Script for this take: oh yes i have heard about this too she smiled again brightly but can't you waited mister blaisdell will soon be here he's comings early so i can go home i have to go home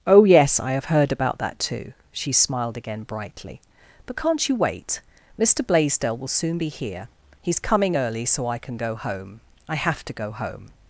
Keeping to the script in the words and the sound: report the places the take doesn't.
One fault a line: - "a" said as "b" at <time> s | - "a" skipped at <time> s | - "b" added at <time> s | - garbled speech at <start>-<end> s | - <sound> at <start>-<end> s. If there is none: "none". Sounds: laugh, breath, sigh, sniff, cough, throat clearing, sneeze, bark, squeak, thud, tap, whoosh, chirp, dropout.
- "this" said as "that" at 1.4 s
- "waited" said as "wait" at 4.6 s
- "comings" said as "coming" at 7.6 s